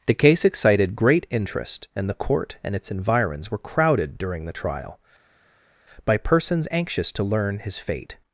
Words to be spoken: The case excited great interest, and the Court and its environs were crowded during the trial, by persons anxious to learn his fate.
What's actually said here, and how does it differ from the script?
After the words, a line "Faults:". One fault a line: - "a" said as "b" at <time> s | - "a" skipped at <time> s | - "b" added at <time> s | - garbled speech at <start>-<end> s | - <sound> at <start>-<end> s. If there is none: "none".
The case excited great interest, and the Court and its environs were crowded during the trial, by persons anxious to learn his fate.
Faults:
none